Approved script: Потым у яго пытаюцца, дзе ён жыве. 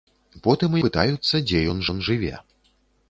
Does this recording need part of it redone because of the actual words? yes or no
yes